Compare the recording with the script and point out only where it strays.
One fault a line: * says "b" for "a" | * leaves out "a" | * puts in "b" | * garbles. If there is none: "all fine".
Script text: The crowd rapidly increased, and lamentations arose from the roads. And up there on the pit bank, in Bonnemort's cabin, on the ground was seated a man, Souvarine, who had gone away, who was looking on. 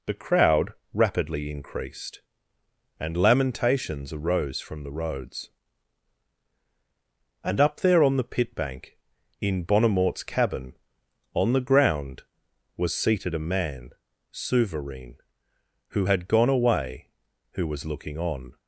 all fine